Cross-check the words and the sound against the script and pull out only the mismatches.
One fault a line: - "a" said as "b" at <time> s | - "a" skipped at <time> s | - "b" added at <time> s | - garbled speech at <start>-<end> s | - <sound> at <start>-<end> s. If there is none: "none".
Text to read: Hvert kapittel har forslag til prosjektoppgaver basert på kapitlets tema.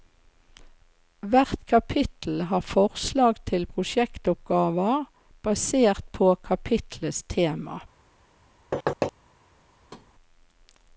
- thud at 8.7-9.1 s
- thud at 9.9-10.1 s